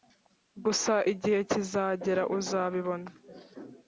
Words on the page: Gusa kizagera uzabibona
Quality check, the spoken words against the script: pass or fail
fail